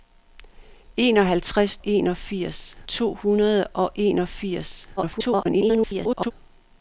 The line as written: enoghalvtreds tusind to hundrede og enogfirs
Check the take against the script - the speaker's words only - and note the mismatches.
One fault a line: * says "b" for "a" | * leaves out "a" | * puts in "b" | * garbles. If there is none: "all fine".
* says "enogfirs" for "tusind"
* garbles